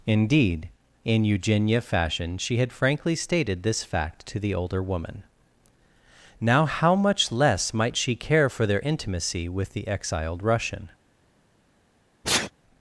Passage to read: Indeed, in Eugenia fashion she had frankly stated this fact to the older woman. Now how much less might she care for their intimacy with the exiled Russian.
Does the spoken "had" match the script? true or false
true